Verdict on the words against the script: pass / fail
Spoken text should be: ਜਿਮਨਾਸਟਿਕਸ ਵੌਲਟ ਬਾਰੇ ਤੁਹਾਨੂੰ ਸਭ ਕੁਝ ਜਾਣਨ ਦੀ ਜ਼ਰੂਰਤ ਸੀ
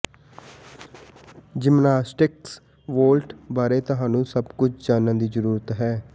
fail